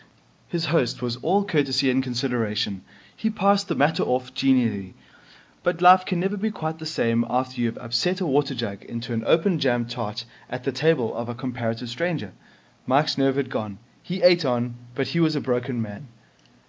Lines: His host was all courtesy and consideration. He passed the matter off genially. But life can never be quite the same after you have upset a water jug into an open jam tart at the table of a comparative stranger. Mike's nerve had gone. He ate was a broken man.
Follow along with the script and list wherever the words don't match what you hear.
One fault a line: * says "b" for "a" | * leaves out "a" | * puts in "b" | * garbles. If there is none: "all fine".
* puts in "on but he"